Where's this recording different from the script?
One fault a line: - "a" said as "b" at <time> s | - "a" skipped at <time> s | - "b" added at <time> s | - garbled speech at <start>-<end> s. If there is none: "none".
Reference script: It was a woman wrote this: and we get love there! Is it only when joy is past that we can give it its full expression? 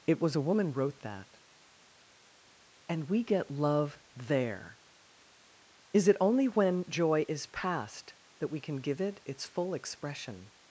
- "this" said as "that" at 1.0 s